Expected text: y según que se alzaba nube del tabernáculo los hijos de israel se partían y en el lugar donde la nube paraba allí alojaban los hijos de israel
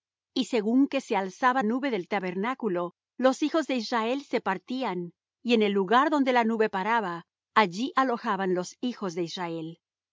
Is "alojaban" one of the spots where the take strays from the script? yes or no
no